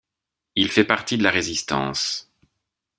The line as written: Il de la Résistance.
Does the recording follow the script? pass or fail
fail